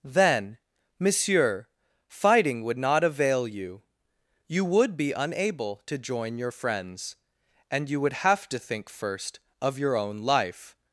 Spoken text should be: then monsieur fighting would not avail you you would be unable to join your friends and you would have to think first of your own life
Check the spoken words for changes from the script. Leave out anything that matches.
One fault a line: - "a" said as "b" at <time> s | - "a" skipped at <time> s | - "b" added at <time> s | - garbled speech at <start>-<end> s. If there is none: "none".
none